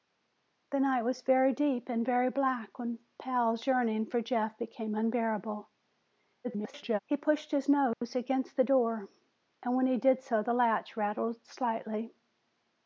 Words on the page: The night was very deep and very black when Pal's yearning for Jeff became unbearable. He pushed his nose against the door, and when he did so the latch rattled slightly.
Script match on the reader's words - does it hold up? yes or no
no